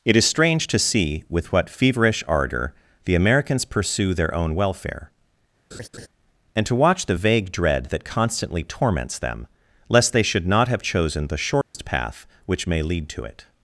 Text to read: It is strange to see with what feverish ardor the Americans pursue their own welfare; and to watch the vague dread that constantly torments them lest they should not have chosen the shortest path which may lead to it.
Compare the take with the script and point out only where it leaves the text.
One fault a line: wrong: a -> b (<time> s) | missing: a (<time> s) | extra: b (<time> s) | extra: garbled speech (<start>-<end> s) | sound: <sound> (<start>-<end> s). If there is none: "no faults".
sound: laugh (5.7-6.1 s)
sound: dropout (11.6-11.7 s)